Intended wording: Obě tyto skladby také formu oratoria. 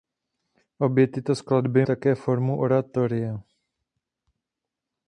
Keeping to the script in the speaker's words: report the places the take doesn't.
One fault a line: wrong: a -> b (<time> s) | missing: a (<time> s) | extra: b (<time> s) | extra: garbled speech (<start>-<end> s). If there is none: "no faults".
no faults